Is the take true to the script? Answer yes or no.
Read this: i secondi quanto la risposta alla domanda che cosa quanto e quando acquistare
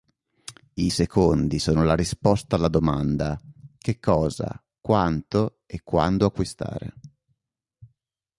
no